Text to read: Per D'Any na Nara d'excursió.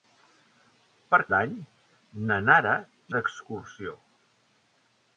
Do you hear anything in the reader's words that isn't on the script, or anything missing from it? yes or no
no